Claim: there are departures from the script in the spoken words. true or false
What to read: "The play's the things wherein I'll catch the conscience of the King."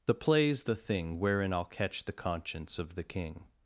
true